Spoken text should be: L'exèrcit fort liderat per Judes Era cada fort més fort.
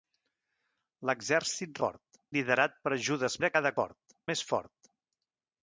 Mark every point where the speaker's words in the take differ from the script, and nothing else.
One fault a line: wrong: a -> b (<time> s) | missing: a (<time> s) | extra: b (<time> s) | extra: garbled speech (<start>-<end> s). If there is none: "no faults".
no faults